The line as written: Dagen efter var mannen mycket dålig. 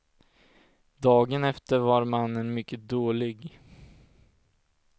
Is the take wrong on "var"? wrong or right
right